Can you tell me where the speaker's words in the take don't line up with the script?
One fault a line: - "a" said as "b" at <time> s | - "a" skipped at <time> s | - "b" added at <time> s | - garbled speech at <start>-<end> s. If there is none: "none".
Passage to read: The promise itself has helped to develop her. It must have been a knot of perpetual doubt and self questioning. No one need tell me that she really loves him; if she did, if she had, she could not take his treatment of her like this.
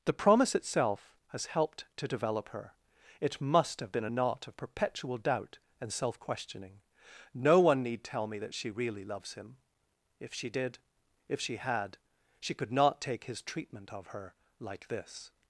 none